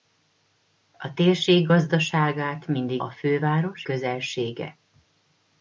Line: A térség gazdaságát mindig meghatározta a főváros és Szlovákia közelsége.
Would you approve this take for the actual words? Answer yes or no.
no